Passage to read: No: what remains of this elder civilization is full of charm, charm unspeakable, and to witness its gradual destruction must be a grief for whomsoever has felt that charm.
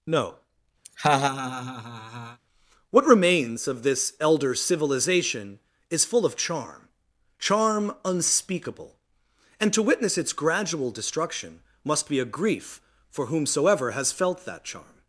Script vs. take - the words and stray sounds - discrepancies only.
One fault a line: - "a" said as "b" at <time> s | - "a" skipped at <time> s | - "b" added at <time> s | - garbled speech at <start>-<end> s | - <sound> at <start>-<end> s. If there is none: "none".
- laugh at 0.8-2.4 s